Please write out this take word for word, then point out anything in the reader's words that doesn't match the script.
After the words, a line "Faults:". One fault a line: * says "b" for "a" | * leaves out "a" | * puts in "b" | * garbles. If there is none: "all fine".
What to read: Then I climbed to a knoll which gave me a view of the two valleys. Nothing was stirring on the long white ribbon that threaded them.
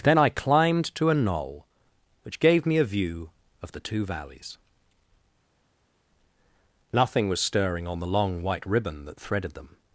Then I climbed to a knoll which gave me a view of the two valleys. Nothing was stirring on the long white ribbon that threaded them.
Faults:
all fine